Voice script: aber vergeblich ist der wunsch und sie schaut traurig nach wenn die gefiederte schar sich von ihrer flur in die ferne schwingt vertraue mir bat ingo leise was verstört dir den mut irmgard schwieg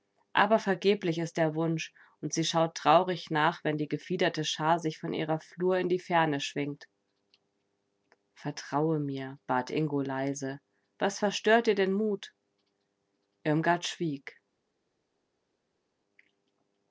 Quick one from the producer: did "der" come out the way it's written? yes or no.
yes